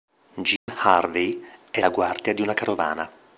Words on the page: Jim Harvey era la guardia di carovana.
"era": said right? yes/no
no